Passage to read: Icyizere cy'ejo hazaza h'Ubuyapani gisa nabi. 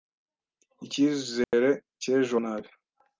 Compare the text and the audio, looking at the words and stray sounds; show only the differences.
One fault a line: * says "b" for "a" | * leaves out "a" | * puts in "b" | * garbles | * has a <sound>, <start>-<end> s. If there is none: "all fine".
* has a dropout, 1.4-1.5 s
* leaves out "hazaza h'Ubuyapani gisa"